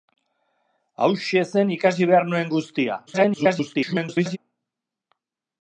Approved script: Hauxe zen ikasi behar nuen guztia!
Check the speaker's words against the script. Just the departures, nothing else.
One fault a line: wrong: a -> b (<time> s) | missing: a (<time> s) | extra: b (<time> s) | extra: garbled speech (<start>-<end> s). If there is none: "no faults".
extra: garbled speech (3.1-4.4 s)